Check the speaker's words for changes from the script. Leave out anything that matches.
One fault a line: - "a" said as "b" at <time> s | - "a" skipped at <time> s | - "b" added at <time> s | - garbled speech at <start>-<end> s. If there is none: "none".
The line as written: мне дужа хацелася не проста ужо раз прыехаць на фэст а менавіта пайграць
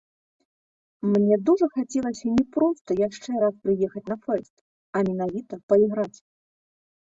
- "ужо" said as "яшчэ" at 3.1 s